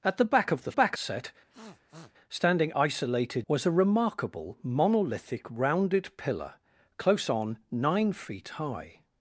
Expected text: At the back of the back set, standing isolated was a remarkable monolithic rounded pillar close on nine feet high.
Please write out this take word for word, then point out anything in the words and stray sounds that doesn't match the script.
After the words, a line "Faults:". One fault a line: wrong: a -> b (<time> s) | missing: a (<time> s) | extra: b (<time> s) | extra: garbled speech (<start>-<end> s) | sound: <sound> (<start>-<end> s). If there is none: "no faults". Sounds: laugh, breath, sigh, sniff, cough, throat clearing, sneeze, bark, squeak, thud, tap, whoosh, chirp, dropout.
At the back of the back set, standing isolated was a remarkable monolithic rounded pillar close on nine feet high.
Faults:
sound: sniff (1.5-2.1 s)